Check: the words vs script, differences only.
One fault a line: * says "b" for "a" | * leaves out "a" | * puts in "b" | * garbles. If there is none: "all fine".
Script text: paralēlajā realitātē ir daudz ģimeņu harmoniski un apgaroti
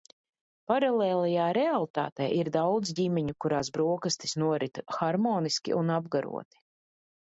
* puts in "kurās brokastis norit"